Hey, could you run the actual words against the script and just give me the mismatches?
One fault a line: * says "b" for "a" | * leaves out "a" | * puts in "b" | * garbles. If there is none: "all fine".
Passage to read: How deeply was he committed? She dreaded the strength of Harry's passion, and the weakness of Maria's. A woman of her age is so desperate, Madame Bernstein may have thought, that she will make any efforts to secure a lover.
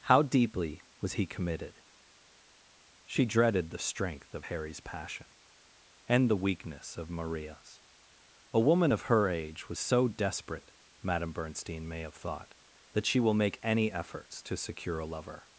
* says "was" for "is"